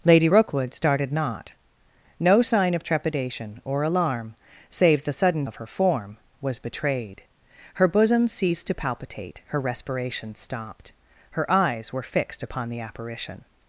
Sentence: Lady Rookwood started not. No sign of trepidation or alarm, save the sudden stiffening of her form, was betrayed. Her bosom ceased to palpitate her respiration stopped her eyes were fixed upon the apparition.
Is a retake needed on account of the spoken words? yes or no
yes